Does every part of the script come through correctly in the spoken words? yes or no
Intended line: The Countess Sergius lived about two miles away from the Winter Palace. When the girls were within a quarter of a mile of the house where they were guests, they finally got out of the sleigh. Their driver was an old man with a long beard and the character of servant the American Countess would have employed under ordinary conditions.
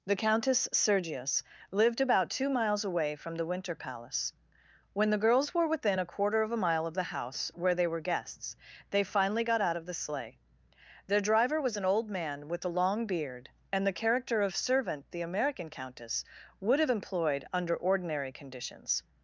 yes